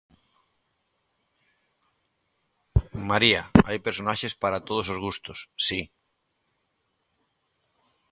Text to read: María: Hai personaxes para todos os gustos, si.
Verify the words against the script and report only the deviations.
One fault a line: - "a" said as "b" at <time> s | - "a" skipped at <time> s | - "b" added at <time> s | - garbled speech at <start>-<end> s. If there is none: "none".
none